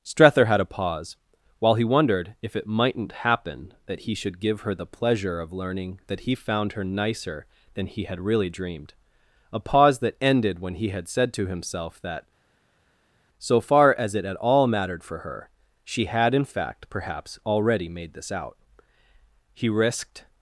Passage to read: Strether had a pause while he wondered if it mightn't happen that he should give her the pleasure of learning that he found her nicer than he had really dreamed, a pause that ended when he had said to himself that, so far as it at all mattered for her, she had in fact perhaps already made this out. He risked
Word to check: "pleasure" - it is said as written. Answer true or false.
true